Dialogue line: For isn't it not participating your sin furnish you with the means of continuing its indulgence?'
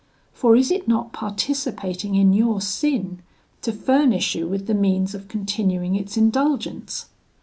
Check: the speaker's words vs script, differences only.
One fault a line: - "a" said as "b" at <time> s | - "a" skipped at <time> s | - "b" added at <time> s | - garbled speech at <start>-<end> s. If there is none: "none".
- "isn't" said as "is" at 0.6 s
- "in" added at 2.1 s
- "to" added at 3.6 s